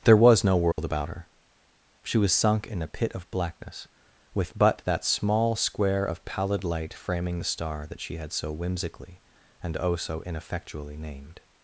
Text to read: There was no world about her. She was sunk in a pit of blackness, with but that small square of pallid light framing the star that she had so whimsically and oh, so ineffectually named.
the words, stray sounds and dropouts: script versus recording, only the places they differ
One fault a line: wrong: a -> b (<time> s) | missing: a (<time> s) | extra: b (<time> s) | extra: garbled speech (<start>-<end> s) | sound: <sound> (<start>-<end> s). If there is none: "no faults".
sound: dropout (0.7-0.8 s)